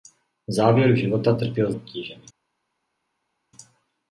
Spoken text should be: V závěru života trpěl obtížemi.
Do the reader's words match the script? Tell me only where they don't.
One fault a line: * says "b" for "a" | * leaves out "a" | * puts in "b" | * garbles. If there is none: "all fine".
all fine